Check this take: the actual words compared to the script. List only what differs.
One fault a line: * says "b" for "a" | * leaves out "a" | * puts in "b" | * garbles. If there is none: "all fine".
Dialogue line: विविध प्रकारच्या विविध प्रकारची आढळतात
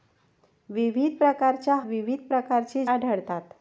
all fine